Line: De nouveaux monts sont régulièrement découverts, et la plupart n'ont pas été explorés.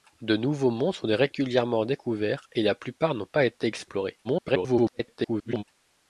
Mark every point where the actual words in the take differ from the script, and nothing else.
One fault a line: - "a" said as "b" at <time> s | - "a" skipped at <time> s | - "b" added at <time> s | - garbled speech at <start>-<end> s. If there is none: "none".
- garbled speech at 4.2-5.6 s